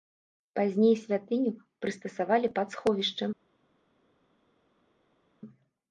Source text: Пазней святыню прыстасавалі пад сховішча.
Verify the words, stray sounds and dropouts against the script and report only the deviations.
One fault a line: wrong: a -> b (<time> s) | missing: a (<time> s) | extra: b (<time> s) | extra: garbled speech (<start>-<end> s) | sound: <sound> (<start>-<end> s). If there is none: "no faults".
no faults